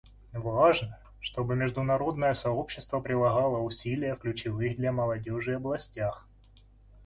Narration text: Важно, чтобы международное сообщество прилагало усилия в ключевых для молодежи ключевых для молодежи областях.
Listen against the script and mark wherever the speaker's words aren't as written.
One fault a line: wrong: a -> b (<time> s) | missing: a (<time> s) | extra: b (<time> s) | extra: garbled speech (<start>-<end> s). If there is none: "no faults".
missing: ключевых для молодежи (5.5 s)